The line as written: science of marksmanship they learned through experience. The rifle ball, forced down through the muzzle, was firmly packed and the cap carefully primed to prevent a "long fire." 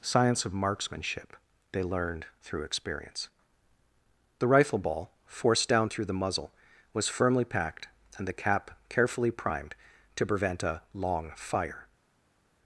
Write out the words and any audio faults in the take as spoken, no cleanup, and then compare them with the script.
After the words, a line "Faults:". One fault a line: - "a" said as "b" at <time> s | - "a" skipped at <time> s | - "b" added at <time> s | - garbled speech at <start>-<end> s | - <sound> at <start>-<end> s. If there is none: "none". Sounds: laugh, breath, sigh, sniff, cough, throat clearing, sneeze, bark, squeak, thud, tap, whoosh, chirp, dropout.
science of marksmanship they learned through experience. The rifle ball, forced down through the muzzle, was firmly packed and the cap carefully primed to prevent a "long fire."
Faults:
none